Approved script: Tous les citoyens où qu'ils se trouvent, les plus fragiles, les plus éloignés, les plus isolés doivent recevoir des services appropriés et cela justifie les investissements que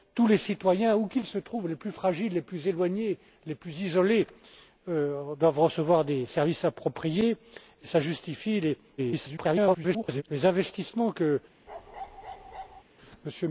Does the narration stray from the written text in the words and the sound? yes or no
yes